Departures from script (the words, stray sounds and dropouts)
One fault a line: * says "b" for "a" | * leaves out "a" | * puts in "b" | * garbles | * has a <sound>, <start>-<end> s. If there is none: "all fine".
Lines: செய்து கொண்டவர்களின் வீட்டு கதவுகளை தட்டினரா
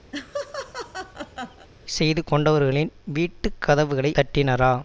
* has a laugh, 0.1-1.7 s